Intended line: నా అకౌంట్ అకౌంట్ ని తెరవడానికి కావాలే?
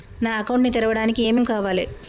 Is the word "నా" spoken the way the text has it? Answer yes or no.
yes